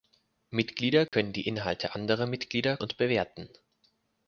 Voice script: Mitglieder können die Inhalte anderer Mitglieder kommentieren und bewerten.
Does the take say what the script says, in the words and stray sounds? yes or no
no